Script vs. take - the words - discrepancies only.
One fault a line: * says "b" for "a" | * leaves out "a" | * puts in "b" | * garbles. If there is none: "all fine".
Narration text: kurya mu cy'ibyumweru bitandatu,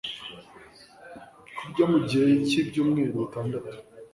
* puts in "gihe"